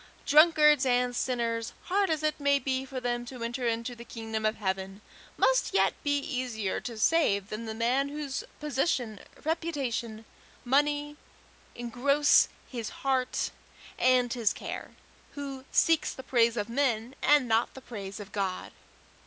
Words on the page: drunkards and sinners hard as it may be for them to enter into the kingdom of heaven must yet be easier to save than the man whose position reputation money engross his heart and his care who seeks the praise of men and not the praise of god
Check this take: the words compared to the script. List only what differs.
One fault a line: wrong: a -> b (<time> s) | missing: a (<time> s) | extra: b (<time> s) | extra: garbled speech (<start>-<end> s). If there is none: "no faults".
no faults